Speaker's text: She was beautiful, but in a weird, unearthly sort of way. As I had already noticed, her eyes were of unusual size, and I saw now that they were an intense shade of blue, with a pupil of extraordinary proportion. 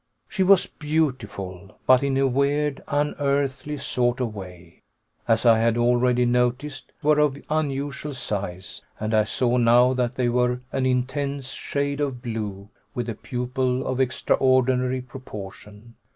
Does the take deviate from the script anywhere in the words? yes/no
yes